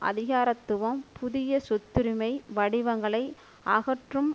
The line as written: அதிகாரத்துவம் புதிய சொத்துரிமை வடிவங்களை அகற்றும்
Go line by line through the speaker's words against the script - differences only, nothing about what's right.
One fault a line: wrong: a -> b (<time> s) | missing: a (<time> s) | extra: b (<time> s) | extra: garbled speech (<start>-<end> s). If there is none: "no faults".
no faults